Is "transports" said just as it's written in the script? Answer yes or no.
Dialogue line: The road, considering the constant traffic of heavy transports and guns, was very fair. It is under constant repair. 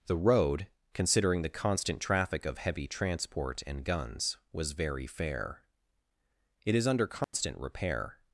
no